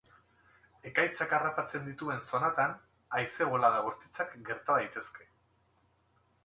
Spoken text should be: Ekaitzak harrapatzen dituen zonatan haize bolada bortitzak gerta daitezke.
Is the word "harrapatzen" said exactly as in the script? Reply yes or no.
yes